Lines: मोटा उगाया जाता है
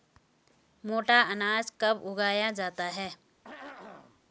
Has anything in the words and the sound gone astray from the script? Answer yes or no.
yes